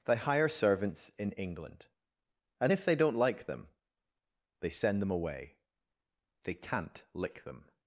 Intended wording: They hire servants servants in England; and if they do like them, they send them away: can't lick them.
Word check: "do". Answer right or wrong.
wrong